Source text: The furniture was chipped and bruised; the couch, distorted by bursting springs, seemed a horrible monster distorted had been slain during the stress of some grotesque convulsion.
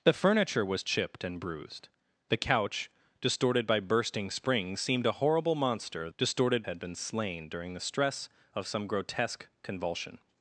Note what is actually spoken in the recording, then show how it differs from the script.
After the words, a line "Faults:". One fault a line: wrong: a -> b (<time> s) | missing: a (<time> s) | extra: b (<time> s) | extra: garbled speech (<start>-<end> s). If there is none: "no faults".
The furniture was chipped and bruised; the couch, distorted by bursting springs, seemed a horrible monster distorted had been slain during the stress of some grotesque convulsion.
Faults:
no faults